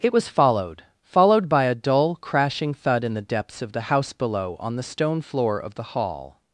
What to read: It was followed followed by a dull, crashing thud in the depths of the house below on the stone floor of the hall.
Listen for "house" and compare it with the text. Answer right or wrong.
right